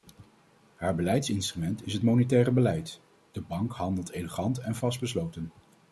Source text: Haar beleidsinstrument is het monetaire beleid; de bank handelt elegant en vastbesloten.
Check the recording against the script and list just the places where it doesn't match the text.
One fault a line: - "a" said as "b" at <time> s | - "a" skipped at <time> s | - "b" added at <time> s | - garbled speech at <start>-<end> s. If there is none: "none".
none